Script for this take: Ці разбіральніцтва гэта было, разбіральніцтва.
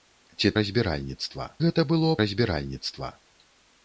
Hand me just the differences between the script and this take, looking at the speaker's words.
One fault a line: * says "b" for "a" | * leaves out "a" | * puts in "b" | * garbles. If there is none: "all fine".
all fine